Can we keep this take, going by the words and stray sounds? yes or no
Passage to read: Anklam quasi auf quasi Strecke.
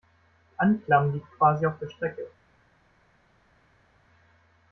no